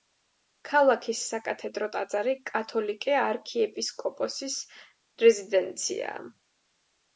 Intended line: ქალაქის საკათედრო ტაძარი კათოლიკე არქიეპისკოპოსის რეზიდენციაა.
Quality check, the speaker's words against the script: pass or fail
pass